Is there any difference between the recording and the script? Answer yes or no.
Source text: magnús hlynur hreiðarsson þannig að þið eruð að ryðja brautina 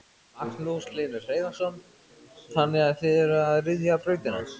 no